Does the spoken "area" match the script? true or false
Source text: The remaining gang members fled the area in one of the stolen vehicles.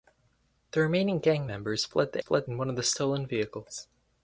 false